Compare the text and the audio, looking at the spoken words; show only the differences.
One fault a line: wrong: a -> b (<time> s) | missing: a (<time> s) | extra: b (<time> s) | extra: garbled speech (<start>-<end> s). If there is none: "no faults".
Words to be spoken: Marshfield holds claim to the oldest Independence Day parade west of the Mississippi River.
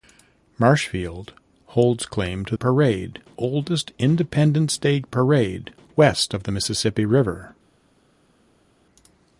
wrong: the -> parade (2.6 s)